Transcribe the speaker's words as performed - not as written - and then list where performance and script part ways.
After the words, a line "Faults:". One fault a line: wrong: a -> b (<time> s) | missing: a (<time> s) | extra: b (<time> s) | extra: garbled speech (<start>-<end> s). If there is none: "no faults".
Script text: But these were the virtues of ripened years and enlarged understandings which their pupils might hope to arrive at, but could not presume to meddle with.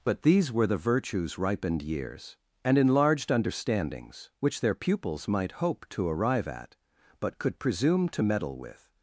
But these were the virtues ripened years and enlarged understandings which their pupils might hope to arrive at, but could presume to meddle with.
Faults:
missing: of (1.4 s)
missing: not (7.6 s)